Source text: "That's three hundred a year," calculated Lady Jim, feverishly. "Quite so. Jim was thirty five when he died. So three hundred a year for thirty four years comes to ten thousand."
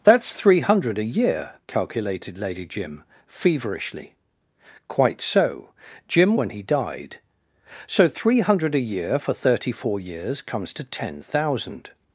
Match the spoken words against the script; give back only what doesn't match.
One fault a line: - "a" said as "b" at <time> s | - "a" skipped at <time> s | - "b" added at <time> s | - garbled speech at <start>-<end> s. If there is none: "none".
- "was thirty five" skipped at 6.3 s